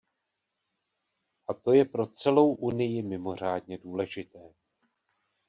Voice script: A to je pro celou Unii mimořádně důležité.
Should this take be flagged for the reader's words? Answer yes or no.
no